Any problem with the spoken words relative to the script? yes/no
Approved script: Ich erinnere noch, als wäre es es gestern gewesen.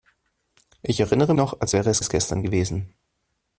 no